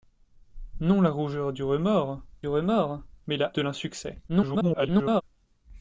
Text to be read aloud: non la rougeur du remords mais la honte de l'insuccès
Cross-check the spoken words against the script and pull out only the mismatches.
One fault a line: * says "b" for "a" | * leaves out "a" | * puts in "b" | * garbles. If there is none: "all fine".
* puts in "remords"
* leaves out "honte"
* garbles